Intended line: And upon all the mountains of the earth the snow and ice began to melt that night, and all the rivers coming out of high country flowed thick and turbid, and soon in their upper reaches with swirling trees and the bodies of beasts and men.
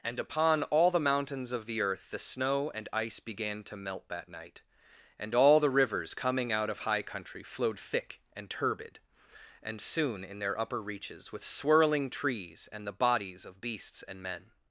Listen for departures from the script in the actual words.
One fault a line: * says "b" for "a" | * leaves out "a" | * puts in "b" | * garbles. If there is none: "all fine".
all fine